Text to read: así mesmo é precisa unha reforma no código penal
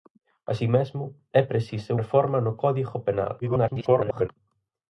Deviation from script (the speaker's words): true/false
true